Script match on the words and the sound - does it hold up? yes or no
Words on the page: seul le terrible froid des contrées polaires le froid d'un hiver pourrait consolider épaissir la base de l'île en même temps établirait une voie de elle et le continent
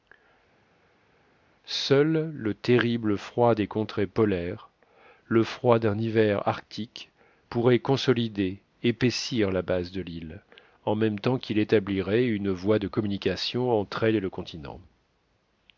no